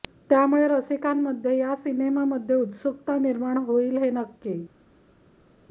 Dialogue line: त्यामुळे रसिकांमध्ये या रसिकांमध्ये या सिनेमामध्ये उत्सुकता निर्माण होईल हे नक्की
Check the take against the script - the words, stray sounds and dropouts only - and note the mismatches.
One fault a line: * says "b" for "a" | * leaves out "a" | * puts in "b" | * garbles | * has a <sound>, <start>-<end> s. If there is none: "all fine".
* leaves out "रसिकांमध्ये या"